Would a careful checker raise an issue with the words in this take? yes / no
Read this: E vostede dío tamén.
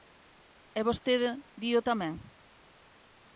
no